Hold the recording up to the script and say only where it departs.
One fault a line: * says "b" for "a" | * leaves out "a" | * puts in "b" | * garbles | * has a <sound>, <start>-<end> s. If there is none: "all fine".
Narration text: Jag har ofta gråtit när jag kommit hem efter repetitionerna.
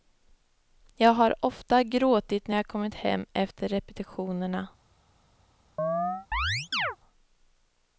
* has a chirp, 5.8-7.0 s